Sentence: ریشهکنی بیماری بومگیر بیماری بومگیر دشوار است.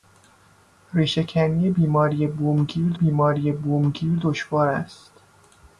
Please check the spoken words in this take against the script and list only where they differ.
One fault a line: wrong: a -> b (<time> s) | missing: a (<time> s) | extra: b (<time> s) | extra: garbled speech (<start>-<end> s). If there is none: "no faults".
no faults